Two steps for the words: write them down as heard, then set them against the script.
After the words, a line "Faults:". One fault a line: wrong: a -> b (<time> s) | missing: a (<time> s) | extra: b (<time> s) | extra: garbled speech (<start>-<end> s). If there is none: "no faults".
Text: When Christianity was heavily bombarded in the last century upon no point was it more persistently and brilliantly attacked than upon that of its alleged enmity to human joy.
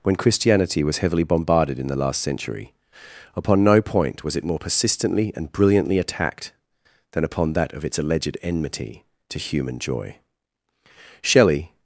When Christianity was heavily bombarded in the last century upon no point was it more persistently and brilliantly attacked than upon that of its alleged enmity to human joy. Shelley
Faults:
extra: Shelley (11.2 s)